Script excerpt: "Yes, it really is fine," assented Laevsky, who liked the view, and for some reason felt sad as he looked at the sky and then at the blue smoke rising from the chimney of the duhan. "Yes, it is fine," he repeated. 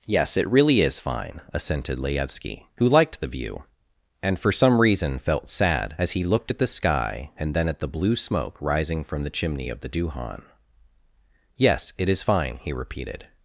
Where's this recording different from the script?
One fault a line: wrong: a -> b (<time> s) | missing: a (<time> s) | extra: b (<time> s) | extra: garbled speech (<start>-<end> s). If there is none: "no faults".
no faults